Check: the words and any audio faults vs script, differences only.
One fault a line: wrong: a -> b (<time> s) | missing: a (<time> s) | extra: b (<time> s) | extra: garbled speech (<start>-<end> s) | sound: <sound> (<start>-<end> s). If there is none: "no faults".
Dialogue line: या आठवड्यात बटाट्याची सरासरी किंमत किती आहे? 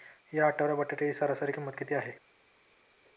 no faults